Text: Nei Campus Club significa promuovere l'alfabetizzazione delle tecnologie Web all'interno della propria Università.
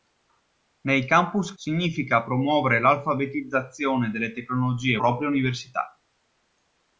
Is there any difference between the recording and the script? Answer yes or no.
yes